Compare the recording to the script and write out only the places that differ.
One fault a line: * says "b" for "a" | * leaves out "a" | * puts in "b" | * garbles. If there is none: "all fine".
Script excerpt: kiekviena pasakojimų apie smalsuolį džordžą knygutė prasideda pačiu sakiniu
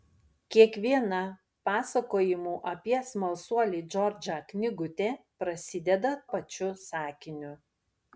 all fine